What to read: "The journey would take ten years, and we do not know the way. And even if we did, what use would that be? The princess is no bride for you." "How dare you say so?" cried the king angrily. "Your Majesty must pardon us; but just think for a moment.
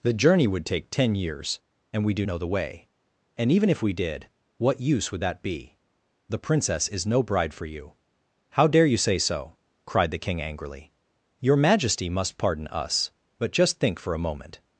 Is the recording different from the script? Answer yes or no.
yes